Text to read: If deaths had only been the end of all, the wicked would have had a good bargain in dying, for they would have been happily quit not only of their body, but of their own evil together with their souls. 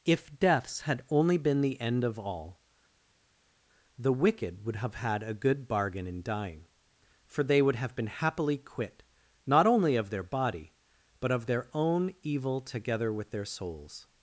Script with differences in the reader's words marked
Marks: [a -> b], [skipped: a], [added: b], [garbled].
If deaths had only been the end of all, the wicked would have had a good bargain in dying, for they would have been happily quit not only of their body, but of their own evil together with their souls.